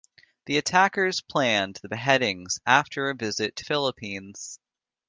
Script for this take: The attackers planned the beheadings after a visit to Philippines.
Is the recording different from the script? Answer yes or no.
no